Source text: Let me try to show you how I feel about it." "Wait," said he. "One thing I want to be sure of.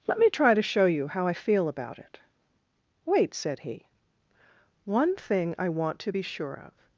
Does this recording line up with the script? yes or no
yes